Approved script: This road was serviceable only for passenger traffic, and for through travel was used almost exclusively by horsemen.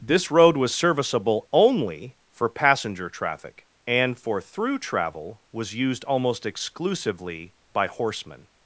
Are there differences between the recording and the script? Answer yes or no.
no